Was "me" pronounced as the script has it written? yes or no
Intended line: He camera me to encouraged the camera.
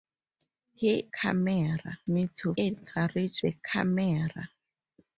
yes